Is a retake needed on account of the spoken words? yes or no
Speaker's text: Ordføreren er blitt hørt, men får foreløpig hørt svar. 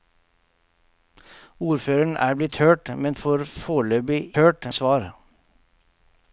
no